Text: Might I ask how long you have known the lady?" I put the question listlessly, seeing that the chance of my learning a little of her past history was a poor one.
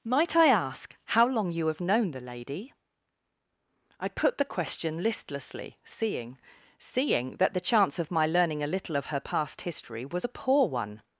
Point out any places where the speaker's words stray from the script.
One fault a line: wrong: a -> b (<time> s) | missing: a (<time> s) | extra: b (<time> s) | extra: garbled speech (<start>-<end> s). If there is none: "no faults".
extra: seeing (6.8 s)